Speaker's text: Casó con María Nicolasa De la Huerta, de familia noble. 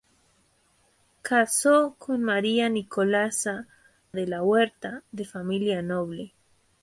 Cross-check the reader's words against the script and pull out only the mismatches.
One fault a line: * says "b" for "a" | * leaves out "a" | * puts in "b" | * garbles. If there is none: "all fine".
all fine